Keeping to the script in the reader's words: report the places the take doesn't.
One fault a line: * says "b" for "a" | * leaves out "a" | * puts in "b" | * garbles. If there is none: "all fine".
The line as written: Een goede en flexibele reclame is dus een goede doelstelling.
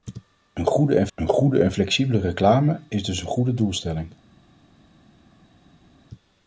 * puts in "een goede en"